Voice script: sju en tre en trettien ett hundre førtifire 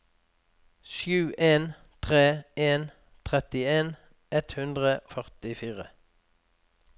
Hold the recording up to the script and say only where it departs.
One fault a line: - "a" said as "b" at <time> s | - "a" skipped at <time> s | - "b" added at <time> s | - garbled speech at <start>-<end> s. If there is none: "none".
none